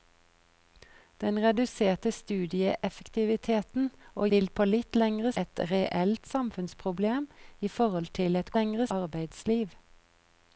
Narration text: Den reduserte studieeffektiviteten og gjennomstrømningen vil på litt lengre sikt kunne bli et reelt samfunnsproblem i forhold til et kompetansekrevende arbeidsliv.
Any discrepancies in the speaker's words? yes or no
yes